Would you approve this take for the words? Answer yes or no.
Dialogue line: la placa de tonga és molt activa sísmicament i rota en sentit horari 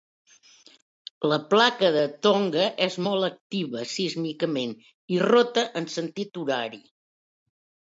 yes